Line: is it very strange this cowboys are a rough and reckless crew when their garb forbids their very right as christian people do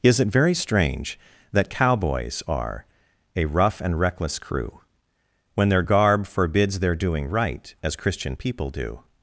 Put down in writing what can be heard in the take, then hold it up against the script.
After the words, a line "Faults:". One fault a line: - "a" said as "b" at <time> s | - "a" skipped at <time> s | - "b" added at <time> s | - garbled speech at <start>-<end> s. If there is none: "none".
is it very strange that cowboys are a rough and reckless crew when their garb forbids their doing right as christian people do
Faults:
- "this" said as "that" at 1.5 s
- "very" said as "doing" at 7.0 s